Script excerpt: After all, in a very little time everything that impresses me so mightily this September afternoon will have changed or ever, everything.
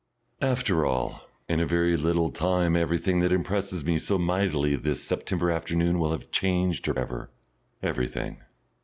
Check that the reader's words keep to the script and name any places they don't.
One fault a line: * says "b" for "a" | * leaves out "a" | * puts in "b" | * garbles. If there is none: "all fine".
all fine